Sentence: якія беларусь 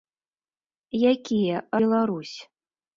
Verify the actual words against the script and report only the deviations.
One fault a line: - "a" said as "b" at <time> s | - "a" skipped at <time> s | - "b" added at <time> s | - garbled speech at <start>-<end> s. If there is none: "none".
none